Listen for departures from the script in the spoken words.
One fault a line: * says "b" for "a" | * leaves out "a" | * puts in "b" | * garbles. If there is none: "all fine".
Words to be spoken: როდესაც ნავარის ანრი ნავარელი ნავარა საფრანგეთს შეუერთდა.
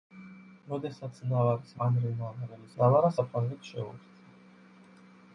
all fine